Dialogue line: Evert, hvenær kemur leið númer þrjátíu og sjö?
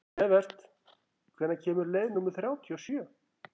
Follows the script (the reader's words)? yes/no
yes